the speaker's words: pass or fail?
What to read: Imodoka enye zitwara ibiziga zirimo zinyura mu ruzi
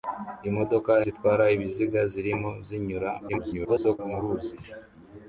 fail